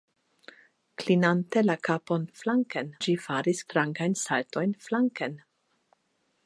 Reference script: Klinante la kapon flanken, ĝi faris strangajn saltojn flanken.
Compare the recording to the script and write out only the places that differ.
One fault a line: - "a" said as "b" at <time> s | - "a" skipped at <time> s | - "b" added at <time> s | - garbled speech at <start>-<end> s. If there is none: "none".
none